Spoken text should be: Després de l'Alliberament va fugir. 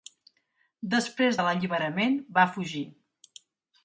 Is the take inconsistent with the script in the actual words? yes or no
no